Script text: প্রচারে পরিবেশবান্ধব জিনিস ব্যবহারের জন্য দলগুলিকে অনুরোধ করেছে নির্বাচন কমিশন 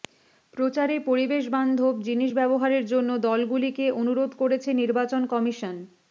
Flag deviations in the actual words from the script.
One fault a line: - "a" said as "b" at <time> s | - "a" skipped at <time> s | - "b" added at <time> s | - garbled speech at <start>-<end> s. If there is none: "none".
none